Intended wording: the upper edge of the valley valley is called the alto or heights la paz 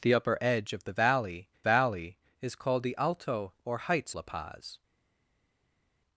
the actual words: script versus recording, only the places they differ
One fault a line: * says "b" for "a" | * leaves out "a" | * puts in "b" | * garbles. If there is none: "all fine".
all fine